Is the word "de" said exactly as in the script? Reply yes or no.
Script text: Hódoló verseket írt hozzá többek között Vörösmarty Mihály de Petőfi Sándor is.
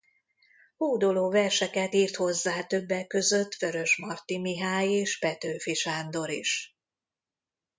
no